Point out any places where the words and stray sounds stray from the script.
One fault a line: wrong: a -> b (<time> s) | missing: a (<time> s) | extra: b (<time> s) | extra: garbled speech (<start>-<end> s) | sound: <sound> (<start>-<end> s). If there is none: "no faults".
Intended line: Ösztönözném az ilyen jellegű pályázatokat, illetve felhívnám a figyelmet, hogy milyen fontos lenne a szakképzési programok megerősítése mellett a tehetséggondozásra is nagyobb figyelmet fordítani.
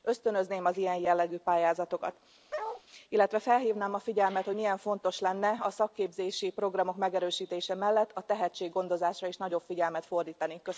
sound: bark (2.5-2.8 s)